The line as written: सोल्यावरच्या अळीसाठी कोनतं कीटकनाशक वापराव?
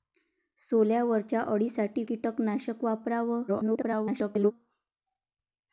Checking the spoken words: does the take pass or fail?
fail